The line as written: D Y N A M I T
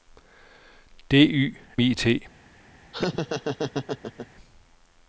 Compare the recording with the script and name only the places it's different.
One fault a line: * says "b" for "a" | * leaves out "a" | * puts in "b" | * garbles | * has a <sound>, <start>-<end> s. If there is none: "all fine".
* leaves out "N A M"
* has a laugh, 2.9-4.3 s